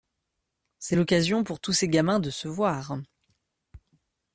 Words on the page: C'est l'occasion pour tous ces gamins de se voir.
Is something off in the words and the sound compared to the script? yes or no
no